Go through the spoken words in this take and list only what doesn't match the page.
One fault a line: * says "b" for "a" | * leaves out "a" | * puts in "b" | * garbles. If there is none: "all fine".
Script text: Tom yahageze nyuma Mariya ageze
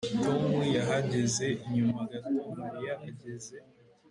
* puts in "gato"